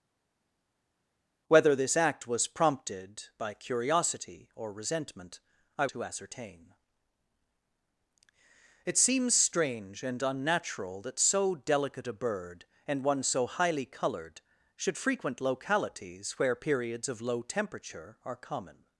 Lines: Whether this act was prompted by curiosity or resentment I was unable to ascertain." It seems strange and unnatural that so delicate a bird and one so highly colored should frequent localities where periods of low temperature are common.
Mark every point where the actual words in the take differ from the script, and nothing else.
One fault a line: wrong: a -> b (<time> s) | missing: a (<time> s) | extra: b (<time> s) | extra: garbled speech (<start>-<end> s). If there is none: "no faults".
missing: was unable (5.9 s)